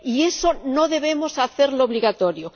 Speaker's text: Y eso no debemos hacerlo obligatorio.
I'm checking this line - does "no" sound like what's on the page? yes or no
yes